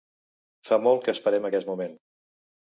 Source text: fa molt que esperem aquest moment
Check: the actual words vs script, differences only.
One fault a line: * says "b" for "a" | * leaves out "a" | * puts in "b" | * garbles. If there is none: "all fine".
all fine